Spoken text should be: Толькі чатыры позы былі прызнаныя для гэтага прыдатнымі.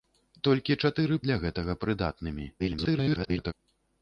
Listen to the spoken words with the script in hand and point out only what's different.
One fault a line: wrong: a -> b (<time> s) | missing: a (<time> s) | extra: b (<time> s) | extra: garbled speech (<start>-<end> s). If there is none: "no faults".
missing: позы былі прызнаныя (1.2 s)
extra: garbled speech (2.6-3.5 s)